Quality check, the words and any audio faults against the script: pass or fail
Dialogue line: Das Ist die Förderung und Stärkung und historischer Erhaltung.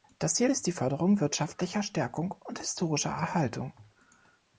fail